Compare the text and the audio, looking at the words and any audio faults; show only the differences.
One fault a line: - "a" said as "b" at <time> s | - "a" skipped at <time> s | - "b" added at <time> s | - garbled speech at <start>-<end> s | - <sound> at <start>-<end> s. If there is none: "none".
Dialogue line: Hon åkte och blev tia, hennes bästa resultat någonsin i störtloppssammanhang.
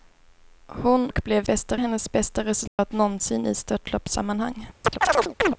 - "åkte" skipped at 1.1 s
- "tia" said as "bästa" at 1.5 s
- dropout at 2.7-2.8 s
- chirp at 4.8-5.6 s